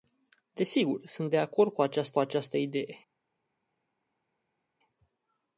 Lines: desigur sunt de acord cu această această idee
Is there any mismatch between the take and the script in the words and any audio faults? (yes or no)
no